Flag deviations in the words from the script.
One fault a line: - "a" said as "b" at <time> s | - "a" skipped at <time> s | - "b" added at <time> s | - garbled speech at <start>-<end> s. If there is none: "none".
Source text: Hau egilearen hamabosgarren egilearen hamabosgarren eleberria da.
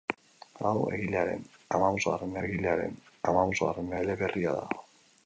none